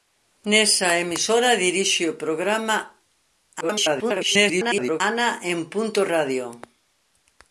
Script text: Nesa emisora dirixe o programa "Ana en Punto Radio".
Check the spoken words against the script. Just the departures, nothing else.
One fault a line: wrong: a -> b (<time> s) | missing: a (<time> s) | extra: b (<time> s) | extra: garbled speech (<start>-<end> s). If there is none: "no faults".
extra: garbled speech (3.6-5.0 s)